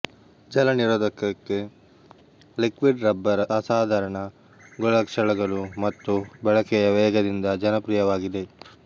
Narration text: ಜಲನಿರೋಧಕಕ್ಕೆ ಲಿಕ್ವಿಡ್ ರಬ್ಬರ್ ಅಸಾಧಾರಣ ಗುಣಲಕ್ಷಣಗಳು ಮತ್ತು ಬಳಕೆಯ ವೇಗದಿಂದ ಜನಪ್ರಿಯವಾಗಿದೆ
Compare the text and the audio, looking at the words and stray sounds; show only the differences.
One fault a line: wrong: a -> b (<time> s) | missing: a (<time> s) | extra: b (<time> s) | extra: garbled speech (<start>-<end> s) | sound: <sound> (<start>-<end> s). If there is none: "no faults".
no faults